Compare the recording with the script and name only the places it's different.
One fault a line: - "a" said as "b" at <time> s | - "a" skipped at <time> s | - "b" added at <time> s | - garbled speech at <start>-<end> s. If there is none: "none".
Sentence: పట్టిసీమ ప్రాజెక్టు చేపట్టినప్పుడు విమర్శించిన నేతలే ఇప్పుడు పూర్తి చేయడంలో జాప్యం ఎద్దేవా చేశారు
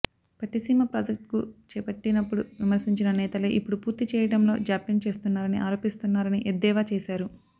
- "చేస్తున్నారని ఆరోపిస్తున్నారని" added at 5.1 s